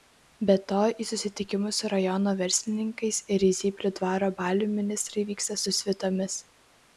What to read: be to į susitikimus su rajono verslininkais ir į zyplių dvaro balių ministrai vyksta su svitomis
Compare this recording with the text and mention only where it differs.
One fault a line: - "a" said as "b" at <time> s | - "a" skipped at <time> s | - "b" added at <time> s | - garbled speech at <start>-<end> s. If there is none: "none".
none